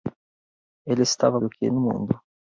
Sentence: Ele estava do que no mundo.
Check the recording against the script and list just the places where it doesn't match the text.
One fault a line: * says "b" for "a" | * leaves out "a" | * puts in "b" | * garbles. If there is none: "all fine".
all fine